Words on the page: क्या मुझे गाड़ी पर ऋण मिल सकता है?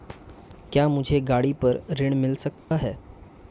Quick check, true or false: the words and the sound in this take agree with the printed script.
false